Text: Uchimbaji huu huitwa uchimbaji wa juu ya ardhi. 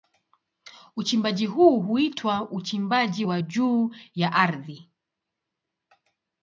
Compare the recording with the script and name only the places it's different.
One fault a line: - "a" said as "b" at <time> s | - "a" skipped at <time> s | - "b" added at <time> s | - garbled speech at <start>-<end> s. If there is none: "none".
none